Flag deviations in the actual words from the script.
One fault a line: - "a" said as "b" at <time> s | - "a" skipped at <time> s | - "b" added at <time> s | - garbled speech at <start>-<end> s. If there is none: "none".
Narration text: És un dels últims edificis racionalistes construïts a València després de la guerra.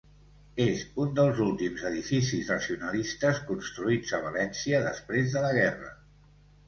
none